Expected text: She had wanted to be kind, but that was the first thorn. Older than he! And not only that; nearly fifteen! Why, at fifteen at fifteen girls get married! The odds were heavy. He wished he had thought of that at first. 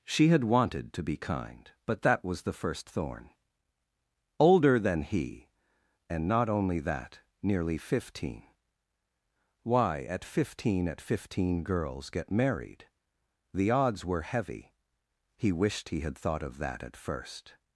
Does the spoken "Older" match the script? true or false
true